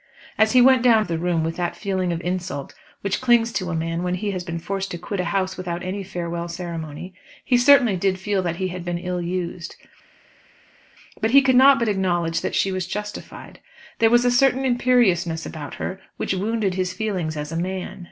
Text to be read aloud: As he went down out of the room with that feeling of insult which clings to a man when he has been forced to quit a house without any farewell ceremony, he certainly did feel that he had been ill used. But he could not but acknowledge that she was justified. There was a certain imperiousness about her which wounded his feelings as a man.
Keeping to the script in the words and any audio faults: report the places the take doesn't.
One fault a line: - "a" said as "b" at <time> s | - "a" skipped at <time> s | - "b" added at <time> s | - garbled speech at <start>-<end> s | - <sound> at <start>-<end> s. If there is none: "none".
- "out" skipped at 1.1 s